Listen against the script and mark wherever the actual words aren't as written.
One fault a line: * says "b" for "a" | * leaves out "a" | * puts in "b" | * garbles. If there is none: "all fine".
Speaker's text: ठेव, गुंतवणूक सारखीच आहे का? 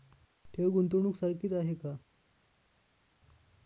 all fine